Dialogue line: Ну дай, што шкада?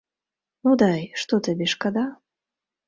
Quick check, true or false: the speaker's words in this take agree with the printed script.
false